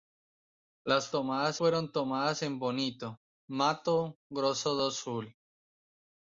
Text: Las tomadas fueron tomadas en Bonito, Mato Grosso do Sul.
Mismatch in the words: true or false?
false